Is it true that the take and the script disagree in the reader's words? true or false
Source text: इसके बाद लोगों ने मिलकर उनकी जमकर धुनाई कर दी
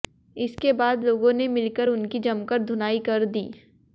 false